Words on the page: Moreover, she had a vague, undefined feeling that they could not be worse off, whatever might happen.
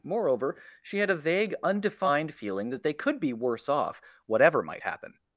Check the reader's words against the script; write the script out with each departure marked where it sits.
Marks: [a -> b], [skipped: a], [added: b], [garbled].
Moreover, she had a vague, undefined feeling that they could [skipped: not] be worse off, whatever might happen.